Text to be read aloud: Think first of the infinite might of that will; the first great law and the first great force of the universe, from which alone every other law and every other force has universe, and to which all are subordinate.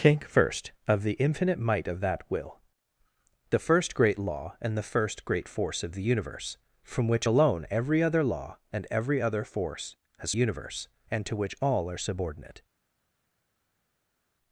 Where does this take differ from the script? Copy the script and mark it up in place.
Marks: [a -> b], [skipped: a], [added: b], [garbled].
Think first of the infinite might of that will; the first great law and the first great force of the universe, from which alone every other law and every other force has universe, and to which all are subordinate.